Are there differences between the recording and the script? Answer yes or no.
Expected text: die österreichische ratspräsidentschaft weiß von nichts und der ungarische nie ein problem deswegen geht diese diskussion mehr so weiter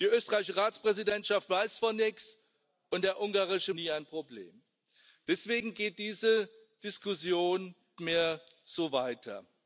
no